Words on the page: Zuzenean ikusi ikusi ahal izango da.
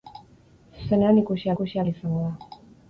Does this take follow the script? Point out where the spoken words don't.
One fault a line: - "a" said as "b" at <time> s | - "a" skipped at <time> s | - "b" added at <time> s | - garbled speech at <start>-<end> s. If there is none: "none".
none